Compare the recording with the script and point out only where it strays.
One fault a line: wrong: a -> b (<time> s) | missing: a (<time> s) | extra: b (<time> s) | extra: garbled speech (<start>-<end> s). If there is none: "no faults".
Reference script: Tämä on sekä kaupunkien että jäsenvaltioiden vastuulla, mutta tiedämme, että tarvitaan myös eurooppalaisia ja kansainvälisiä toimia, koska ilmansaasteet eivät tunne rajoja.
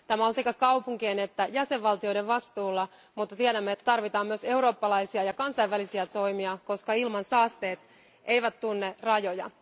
no faults